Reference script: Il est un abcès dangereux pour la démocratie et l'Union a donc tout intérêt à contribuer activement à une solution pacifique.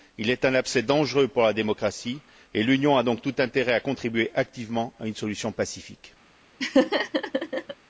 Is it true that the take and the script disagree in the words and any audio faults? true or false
true